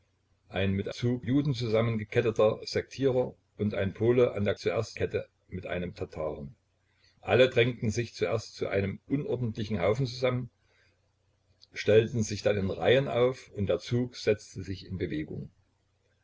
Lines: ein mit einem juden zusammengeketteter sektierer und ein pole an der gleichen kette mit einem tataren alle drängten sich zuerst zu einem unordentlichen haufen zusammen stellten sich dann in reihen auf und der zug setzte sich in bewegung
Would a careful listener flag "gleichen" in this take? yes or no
yes